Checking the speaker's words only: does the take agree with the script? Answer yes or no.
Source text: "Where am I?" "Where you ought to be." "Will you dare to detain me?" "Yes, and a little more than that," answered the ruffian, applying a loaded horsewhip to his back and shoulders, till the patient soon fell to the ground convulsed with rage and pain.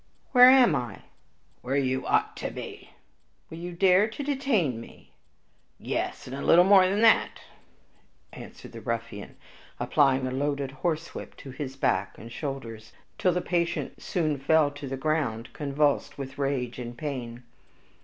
yes